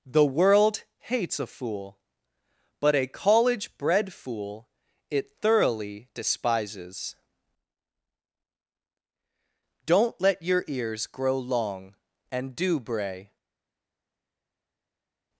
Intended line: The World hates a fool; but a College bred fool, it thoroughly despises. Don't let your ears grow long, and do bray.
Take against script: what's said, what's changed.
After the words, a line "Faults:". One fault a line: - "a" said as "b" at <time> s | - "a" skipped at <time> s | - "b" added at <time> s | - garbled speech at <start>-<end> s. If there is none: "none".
The World hates a fool; but a College bred fool, it thoroughly despises. Don't let your ears grow long, and do bray.
Faults:
none